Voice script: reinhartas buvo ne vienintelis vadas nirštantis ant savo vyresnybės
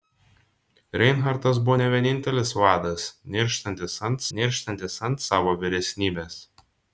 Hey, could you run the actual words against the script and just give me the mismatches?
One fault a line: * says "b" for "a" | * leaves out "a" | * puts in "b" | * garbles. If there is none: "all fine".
* puts in "nirštantis ant"